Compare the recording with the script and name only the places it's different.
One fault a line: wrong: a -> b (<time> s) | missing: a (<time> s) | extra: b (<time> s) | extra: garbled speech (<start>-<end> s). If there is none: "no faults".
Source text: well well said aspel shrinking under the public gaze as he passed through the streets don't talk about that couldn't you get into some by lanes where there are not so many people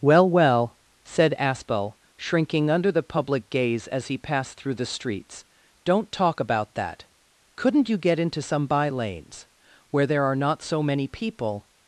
no faults